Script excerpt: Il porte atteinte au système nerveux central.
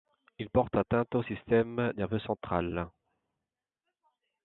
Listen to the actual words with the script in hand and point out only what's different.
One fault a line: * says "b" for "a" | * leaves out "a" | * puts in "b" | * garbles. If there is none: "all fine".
all fine